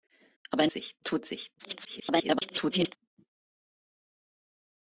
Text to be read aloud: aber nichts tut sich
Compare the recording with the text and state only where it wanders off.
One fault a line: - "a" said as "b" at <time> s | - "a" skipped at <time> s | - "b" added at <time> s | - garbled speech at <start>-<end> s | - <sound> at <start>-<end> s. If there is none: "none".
- "nichts" said as "sich" at 0.7 s
- garbled speech at 1.6-3.0 s